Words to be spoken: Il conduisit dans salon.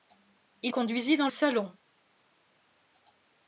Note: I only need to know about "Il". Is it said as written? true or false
true